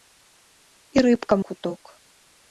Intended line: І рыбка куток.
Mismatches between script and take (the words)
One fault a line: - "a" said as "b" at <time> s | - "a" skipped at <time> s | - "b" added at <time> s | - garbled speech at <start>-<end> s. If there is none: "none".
none